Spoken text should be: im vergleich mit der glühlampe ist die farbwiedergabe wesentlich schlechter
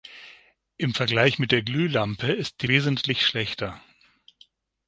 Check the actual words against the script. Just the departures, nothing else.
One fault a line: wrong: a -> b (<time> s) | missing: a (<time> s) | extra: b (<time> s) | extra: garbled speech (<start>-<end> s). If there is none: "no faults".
missing: farbwiedergabe (2.7 s)